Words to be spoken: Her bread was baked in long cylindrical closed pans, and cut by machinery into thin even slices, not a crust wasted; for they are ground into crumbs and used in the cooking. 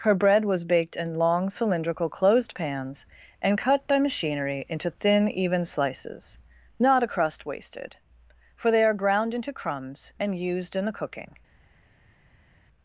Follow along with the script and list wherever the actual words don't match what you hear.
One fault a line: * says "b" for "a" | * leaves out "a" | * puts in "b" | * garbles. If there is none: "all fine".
all fine